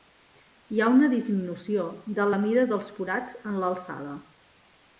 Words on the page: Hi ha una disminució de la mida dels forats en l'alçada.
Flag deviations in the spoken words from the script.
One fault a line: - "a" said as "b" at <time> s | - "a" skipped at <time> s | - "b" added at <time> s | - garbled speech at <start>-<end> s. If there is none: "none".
none